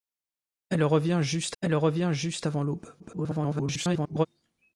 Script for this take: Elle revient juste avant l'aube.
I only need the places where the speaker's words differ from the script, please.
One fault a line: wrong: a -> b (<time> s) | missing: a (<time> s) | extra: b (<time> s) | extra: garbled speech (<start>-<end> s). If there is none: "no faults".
extra: elle revient juste (1.6 s)
extra: garbled speech (3.0-4.3 s)